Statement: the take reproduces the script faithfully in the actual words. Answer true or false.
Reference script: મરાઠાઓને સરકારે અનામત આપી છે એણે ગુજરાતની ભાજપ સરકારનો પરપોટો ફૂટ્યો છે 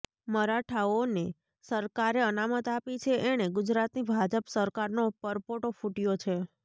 true